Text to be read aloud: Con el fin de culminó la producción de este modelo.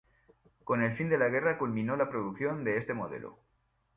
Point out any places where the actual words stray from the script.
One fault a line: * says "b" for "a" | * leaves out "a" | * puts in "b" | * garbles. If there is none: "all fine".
* puts in "la guerra"